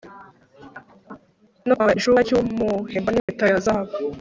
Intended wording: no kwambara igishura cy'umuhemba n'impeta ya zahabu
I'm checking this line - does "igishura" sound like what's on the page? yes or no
yes